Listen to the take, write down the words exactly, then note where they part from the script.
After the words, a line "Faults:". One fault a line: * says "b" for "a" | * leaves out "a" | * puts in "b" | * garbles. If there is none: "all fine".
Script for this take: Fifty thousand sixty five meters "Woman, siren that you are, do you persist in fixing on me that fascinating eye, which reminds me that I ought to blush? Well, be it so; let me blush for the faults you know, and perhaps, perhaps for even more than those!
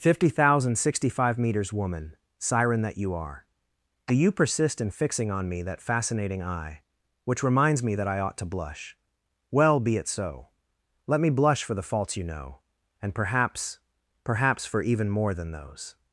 Fifty thousand sixty five meters "Woman, siren that you are, do you persist in fixing on me that fascinating eye, which reminds me that I ought to blush? Well, be it so; let me blush for the faults you know, and perhaps, perhaps for even more than those!
Faults:
all fine